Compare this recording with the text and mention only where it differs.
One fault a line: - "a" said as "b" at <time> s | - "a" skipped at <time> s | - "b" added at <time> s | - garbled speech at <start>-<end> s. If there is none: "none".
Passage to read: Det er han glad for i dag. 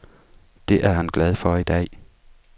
none